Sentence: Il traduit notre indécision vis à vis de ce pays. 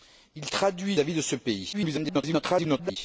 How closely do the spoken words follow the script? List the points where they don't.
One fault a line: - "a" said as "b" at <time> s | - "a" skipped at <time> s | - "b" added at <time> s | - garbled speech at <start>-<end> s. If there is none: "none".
- "notre indécision vis" skipped at 1.0 s
- garbled speech at 1.7-3.0 s